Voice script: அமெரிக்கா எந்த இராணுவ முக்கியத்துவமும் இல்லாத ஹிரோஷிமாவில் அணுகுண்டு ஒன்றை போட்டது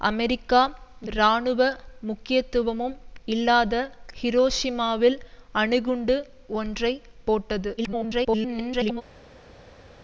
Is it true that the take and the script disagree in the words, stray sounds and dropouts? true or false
true